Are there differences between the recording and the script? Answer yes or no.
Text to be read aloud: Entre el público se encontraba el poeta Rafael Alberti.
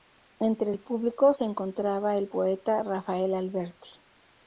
no